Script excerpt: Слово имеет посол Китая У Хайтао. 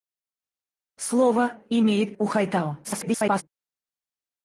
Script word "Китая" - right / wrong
wrong